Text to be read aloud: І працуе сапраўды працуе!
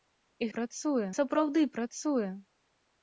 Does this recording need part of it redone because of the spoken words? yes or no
no